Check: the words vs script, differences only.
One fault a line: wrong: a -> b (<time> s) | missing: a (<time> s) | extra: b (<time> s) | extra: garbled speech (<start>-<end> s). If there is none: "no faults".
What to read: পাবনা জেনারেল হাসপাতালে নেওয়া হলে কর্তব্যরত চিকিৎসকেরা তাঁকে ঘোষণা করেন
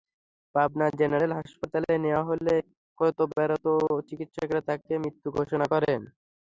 extra: মৃত (5.0 s)